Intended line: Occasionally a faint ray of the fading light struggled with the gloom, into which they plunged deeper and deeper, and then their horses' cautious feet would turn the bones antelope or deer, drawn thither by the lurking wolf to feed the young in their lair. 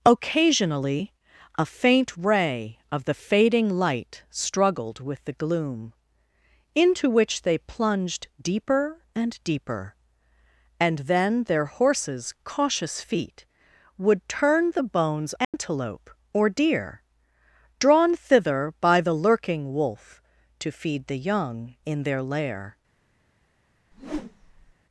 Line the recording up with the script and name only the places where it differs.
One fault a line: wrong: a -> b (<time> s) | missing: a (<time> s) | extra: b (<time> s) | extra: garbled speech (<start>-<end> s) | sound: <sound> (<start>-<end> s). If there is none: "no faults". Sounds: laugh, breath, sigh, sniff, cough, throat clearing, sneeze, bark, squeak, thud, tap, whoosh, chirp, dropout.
sound: dropout (15.4-15.5 s)
sound: whoosh (23.9-24.7 s)